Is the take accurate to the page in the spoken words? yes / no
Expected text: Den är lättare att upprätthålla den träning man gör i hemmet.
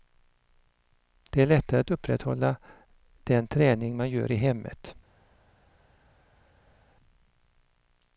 no